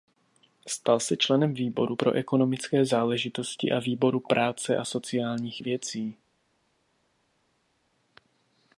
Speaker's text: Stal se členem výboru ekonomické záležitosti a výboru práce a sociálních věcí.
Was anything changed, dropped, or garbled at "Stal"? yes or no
no